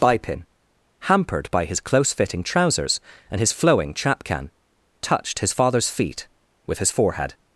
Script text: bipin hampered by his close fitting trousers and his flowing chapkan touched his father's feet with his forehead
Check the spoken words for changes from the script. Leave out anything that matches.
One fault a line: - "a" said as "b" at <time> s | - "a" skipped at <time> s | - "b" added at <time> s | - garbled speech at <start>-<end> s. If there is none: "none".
none